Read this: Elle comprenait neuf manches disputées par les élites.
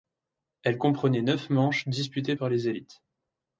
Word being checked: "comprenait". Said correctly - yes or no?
yes